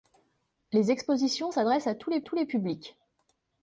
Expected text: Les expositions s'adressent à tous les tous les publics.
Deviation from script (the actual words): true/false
false